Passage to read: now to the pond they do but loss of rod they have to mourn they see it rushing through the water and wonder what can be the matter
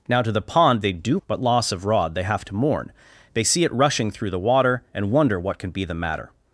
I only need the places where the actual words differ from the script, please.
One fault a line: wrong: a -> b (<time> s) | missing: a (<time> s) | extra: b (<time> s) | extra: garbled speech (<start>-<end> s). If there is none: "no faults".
no faults